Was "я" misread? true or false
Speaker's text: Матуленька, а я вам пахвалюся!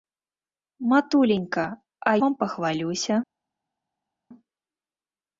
true